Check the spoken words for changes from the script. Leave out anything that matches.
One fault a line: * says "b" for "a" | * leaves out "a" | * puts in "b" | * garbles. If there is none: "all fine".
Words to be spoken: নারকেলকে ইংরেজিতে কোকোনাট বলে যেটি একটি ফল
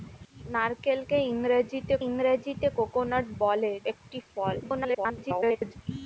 * puts in "ইংরেজিতে"
* leaves out "যেটি"
* garbles